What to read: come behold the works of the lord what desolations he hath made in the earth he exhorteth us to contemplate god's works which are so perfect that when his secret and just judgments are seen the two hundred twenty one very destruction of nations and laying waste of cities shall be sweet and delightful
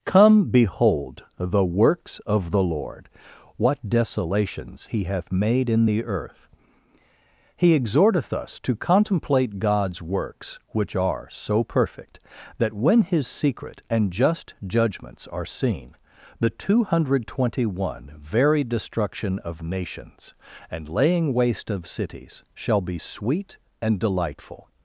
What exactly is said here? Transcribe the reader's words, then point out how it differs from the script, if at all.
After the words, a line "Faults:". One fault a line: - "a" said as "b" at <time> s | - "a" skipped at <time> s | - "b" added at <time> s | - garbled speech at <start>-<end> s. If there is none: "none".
come behold the works of the lord what desolations he hath made in the earth he exhorteth us to contemplate god's works which are so perfect that when his secret and just judgments are seen the two hundred twenty one very destruction of nations and laying waste of cities shall be sweet and delightful
Faults:
none